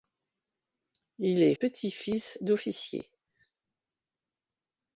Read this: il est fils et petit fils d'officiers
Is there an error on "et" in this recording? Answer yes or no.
yes